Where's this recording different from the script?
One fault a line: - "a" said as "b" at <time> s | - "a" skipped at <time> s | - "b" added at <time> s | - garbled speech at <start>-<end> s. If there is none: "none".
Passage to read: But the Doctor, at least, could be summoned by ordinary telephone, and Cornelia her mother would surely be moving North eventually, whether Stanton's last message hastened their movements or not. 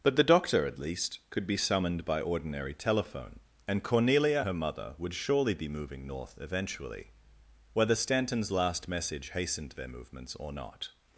none